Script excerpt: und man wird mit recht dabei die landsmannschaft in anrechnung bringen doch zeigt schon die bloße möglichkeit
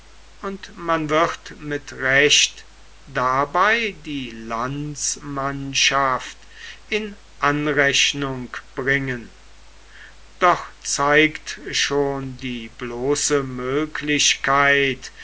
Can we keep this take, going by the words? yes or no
yes